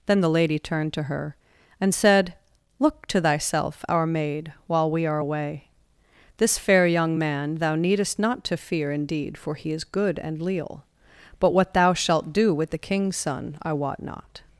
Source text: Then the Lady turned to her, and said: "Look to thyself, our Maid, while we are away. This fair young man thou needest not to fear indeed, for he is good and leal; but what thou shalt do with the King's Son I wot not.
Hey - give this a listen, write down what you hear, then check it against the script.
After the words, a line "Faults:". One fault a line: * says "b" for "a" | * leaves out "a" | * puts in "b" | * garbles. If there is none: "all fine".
Then the Lady turned to her, and said: "Look to thyself, our Maid, while we are away. This fair young man thou needest not to fear indeed, for he is good and leal; but what thou shalt do with the King's Son I wot not.
Faults:
all fine